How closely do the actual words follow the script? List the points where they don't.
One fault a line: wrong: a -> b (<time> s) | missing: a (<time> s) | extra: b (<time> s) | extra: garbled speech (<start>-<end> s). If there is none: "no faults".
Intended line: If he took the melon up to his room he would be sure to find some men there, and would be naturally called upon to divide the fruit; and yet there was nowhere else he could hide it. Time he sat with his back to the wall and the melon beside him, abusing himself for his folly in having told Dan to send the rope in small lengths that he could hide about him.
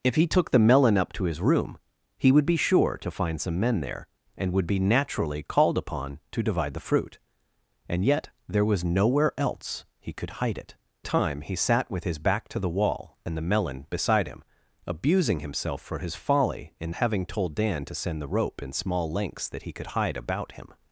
no faults